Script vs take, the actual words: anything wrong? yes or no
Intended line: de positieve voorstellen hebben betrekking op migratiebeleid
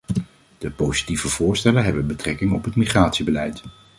yes